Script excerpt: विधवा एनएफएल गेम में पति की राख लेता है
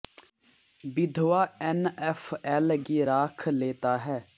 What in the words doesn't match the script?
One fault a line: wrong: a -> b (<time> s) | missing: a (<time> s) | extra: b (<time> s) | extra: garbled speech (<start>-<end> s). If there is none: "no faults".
missing: गेम में पति (2.8 s)